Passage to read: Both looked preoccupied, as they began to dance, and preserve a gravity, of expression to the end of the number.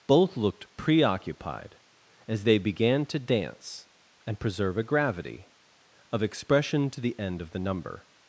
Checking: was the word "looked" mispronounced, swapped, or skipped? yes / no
no